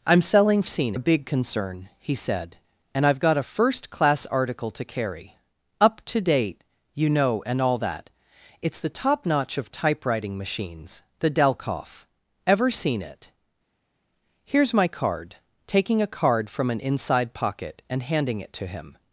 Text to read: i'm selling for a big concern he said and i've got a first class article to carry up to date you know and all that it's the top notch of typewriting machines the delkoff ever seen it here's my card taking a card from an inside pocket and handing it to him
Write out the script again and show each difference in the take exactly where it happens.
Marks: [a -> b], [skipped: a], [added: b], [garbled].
i'm selling [for -> seen] a big concern he said and i've got a first class article to carry up to date you know and all that it's the top notch of typewriting machines the delkoff ever seen it here's my card taking a card from an inside pocket and handing it to him